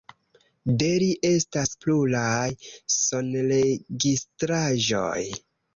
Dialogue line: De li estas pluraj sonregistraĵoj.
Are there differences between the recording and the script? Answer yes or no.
no